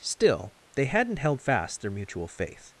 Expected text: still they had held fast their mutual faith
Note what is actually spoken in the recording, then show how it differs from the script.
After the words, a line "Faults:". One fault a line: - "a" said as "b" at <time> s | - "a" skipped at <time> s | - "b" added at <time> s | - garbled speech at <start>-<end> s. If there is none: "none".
still they hadn't held fast their mutual faith
Faults:
- "had" said as "hadn't" at 0.8 s